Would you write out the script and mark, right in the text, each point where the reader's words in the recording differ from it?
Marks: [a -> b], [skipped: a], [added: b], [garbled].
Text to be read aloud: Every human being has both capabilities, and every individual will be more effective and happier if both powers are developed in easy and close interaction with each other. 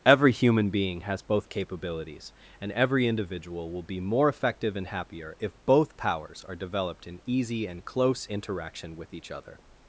Every human being has both capabilities, and every individual will be more effective and happier if both powers are developed in easy and close interaction with each other.